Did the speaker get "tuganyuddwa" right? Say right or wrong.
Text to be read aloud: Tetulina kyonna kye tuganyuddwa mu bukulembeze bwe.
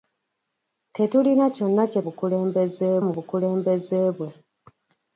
wrong